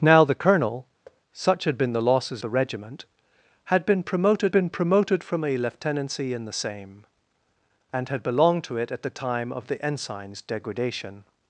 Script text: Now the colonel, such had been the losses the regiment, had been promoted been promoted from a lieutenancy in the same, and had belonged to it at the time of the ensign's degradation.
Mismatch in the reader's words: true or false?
false